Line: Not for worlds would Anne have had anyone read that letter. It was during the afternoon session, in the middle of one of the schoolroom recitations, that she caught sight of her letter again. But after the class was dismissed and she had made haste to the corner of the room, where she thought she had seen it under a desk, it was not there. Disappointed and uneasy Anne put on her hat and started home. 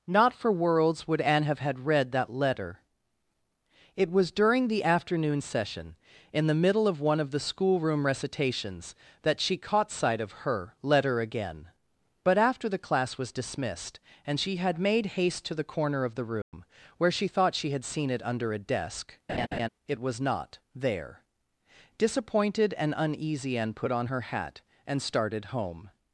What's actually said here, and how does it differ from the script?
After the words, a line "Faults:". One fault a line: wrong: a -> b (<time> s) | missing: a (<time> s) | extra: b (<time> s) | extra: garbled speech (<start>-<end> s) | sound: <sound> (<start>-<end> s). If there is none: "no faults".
Not for worlds would Anne have had read that letter. It was during the afternoon session, in the middle of one of the schoolroom recitations, that she caught sight of her letter again. But after the class was dismissed and she had made haste to the corner of the room, where she thought she had seen it under a desk, it was not there. Disappointed and uneasy Anne put on her hat and started home.
Faults:
missing: anyone (1.9 s)
sound: dropout (16.4-16.5 s)
sound: laugh (19.3-19.7 s)